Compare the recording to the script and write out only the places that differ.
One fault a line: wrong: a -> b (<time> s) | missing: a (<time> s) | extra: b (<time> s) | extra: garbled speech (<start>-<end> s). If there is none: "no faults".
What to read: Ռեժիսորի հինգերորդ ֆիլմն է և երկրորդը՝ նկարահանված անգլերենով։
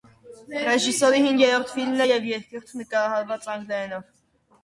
no faults